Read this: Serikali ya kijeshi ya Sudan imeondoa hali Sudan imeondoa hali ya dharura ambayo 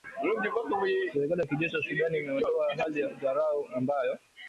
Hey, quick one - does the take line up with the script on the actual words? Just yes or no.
no